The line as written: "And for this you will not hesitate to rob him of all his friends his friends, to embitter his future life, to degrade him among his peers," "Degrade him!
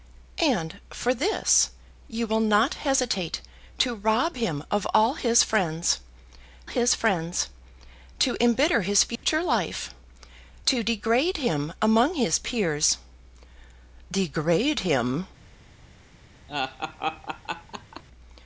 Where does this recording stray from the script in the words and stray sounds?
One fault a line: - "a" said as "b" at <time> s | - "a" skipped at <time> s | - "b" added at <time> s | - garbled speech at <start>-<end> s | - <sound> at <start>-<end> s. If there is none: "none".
- dropout at 9.2-9.2 s
- laugh at 16.5-18.0 s